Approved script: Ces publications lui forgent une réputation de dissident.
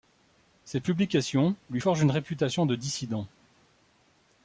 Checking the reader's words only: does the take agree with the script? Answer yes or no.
yes